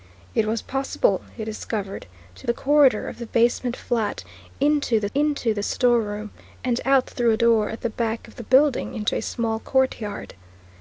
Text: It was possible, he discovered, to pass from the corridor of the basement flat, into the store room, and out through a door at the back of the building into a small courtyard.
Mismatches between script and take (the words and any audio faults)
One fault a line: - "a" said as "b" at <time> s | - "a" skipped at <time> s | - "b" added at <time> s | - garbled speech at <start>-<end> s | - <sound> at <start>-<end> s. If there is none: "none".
- "pass from" skipped at 2.5 s
- "into the" added at 5.1 s